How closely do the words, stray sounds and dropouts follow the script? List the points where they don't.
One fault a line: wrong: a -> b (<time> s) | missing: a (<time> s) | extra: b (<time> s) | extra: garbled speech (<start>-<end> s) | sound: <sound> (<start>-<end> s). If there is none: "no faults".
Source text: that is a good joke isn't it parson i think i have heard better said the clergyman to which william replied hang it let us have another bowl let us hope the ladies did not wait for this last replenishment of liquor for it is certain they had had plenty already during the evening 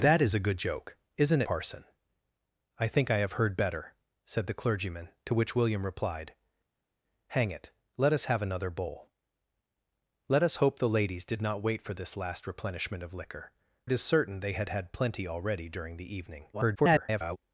missing: it (1.4 s)
missing: for (13.5 s)
extra: garbled speech (16.5-17.4 s)